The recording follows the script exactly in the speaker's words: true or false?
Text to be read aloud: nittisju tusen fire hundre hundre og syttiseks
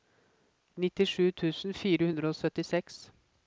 false